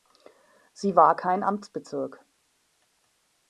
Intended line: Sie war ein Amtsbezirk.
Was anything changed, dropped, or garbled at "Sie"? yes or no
no